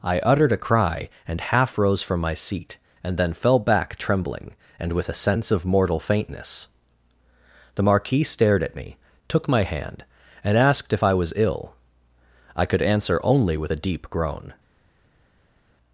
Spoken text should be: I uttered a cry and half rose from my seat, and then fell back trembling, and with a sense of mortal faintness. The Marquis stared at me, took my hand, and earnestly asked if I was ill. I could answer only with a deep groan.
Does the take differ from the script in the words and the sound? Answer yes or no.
yes